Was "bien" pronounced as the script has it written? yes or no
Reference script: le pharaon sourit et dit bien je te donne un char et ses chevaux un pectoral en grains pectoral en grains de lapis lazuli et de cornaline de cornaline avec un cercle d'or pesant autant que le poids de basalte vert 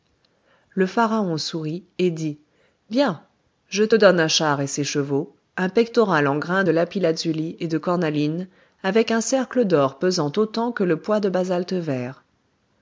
yes